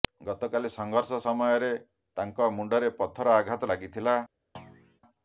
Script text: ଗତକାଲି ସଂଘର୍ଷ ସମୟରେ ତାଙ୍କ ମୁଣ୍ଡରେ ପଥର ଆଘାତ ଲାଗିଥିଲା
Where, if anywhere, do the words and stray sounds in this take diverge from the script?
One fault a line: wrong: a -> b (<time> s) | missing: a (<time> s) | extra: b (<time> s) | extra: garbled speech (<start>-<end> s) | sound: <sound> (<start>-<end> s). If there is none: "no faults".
sound: thud (4.5-5.0 s)